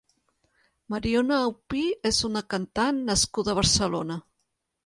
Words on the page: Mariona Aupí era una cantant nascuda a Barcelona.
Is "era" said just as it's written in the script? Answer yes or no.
no